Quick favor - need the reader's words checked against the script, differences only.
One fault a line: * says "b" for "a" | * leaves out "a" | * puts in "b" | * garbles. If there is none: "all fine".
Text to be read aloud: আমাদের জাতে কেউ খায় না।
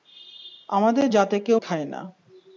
all fine